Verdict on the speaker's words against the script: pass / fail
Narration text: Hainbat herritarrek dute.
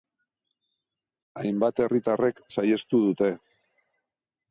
fail